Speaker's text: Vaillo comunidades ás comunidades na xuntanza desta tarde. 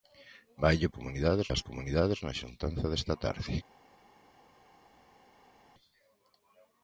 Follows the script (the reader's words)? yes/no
yes